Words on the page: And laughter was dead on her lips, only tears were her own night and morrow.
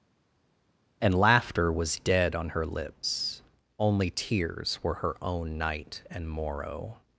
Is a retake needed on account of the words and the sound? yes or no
no